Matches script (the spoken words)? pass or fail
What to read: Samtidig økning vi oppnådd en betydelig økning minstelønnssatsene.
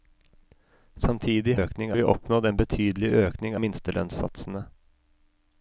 pass